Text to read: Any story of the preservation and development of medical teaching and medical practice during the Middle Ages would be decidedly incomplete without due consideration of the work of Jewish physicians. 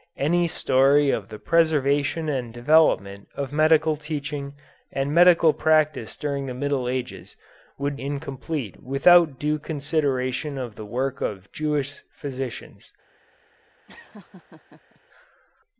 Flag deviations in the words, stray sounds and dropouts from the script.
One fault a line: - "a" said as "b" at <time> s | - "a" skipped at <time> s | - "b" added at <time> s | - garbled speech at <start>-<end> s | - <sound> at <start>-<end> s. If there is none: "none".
- "be decidedly" skipped at 8.0 s
- laugh at 13.9-15.0 s